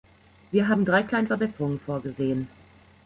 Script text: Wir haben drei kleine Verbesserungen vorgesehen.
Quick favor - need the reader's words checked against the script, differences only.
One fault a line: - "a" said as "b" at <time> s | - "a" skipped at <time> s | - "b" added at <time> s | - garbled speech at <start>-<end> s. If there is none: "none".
none